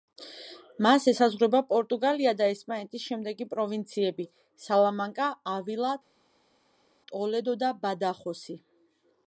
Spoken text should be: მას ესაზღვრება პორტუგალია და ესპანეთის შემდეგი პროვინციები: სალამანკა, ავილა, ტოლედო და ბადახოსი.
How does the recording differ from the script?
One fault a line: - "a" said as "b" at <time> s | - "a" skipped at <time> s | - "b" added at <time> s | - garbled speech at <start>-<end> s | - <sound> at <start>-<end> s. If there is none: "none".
none